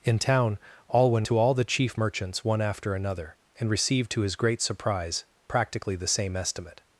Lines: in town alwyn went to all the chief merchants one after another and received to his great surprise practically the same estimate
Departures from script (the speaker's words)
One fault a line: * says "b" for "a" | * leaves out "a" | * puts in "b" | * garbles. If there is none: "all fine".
* leaves out "went"